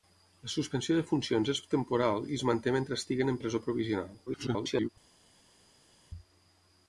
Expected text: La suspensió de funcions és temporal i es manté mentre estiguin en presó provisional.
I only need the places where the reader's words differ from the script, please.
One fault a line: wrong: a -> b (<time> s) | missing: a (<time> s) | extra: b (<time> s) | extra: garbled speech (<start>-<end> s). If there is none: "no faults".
extra: garbled speech (4.3-4.9 s)